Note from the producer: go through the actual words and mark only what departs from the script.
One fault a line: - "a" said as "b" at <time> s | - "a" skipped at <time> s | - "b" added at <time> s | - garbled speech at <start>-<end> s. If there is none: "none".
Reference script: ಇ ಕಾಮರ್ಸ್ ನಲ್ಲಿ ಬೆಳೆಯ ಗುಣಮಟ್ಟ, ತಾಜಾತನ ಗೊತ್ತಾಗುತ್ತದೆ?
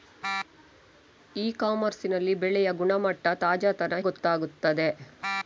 none